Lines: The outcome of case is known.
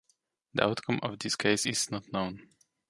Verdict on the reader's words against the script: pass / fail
fail